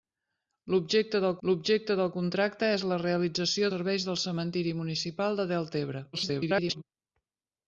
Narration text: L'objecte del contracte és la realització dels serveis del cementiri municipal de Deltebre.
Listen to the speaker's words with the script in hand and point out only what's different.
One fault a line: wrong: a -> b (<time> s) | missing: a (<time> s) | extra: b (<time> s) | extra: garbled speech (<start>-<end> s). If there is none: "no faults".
extra: l'objecte del (1.5 s)
missing: dels (3.7 s)
extra: garbled speech (6.1-6.8 s)